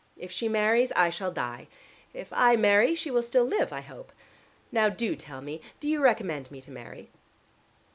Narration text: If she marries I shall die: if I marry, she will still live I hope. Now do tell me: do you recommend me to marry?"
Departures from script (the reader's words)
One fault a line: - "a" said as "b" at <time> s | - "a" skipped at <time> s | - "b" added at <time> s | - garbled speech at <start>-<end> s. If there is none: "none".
none